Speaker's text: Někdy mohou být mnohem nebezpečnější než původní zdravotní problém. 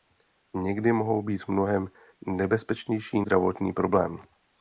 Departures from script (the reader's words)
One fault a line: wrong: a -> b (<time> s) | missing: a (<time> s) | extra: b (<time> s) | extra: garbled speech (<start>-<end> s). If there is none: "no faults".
missing: než původní (3.2 s)